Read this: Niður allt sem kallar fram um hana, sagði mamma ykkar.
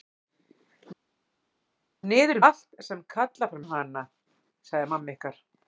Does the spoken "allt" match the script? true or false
true